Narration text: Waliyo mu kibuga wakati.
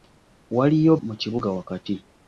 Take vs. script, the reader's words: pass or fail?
pass